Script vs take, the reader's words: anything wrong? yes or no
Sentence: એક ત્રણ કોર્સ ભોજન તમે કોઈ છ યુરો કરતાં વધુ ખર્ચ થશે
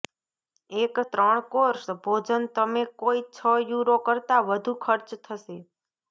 no